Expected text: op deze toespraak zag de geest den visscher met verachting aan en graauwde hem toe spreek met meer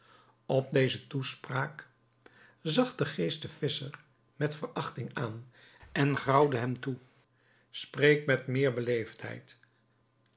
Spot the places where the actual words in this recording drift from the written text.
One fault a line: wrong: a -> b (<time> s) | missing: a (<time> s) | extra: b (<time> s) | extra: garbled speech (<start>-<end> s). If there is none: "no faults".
no faults